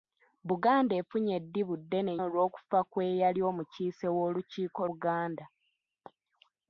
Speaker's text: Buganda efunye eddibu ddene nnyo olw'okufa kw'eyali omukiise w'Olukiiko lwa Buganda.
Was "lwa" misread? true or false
true